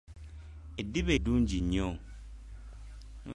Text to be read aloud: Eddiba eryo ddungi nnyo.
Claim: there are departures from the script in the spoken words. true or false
true